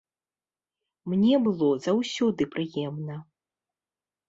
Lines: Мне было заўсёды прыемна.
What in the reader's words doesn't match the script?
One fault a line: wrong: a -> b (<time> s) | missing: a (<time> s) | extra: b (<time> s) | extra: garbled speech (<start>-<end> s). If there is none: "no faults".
no faults